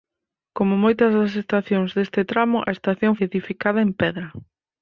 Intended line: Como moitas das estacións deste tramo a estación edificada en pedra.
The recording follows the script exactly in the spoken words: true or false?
true